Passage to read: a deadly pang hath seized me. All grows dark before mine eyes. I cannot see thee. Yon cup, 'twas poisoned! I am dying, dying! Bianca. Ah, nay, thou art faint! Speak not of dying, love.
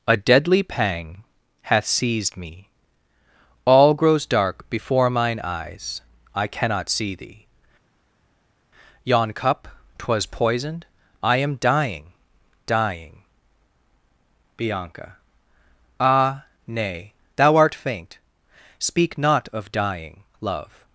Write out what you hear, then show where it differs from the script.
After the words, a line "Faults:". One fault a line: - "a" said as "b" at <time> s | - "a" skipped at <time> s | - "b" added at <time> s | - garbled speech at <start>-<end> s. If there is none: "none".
a deadly pang hath seized me. All grows dark before mine eyes. I cannot see thee. Yon cup, 'twas poisoned! I am dying, dying! Bianca. Ah, nay, thou art faint! Speak not of dying, love.
Faults:
none